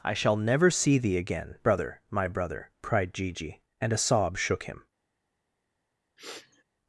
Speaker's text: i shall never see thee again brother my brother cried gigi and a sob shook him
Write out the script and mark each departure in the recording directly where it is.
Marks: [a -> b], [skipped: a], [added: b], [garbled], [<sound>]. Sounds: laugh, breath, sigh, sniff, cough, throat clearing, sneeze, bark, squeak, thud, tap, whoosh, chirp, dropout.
i shall never see thee again brother my brother cried gigi and a sob shook him [sniff]